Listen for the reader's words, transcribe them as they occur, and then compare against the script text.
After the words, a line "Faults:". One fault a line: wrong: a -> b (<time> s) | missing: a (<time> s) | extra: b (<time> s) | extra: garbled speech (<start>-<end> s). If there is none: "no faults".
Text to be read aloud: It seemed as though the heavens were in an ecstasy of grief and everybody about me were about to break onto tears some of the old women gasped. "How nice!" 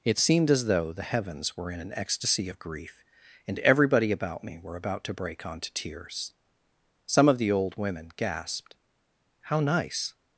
It seemed as though the heavens were in an ecstasy of grief and everybody about me were about to break onto tears some of the old women gasped. "How nice!"
Faults:
no faults